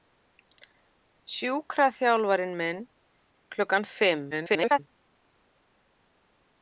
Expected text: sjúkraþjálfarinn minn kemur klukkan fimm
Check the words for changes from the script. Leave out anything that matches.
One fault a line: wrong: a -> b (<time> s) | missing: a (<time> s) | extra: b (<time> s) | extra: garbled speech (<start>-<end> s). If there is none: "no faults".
missing: kemur (2.8 s)
extra: garbled speech (4.3-4.8 s)